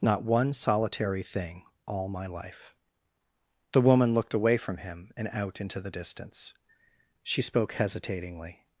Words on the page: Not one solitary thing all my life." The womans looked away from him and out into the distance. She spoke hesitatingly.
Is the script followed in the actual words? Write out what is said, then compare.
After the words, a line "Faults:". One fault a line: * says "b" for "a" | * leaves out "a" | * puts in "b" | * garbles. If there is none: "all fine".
Not one solitary thing all my life." The woman looked away from him and out into the distance. She spoke hesitatingly.
Faults:
* says "woman" for "womans"